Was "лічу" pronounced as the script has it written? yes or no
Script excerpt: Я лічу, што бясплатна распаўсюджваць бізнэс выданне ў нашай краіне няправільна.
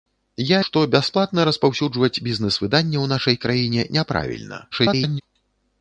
no